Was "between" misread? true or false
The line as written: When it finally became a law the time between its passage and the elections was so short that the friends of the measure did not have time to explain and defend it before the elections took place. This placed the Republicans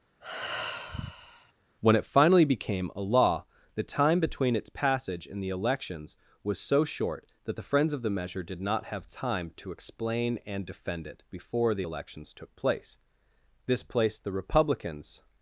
false